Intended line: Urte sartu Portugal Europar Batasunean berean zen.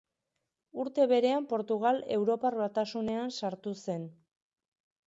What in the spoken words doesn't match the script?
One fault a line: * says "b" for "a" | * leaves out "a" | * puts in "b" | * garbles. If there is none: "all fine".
* says "berean" for "sartu"
* says "sartu" for "berean"